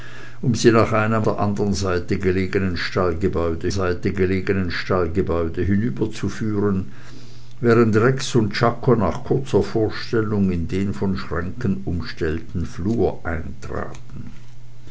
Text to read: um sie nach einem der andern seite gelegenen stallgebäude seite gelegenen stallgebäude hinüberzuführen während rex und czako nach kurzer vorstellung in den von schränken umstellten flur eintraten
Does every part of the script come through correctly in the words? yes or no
yes